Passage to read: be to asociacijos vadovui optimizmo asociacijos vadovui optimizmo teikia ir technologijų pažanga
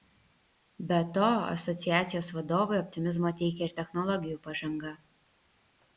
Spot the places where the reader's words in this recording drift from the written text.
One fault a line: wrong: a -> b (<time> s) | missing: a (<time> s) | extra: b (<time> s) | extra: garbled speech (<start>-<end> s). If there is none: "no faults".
missing: asociacijos vadovui optimizmo (3.4 s)